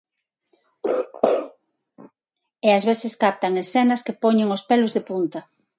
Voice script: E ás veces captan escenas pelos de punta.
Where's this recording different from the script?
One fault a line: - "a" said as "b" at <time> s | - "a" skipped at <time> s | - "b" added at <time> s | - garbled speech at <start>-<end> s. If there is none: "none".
- "que poñen os" added at 4.0 s